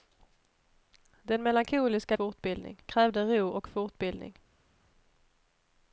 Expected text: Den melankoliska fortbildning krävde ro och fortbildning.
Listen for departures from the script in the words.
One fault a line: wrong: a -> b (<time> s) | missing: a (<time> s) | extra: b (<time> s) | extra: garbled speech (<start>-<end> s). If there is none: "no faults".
no faults